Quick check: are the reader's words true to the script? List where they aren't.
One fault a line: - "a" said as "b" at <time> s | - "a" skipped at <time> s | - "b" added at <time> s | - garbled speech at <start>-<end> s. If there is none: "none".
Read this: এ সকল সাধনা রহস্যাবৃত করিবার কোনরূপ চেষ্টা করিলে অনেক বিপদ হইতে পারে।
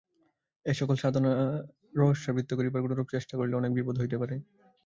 none